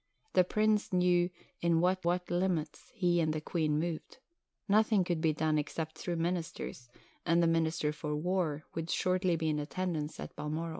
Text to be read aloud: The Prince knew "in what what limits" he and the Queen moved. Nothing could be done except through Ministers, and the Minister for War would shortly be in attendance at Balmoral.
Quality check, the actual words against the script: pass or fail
pass